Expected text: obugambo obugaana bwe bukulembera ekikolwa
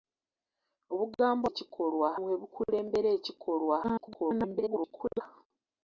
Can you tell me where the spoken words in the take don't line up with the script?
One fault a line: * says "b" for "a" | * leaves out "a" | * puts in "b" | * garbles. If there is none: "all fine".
* says "ekikolwa" for "obugaana"
* garbles